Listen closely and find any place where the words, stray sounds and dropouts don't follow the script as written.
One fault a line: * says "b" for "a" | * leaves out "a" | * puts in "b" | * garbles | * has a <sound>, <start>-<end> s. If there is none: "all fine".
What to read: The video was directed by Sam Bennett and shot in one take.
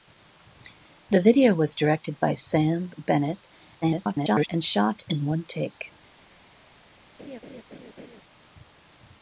* garbles
* has a laugh, 7.2-8.2 s